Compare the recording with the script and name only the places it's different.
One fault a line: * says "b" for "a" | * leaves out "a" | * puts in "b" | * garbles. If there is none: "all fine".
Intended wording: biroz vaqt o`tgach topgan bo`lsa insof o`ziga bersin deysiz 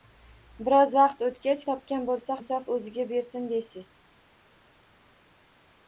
all fine